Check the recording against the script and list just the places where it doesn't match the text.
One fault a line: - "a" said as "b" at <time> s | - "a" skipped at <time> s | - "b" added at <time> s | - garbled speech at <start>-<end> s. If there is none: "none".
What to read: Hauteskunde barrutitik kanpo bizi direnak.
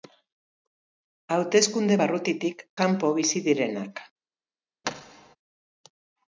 none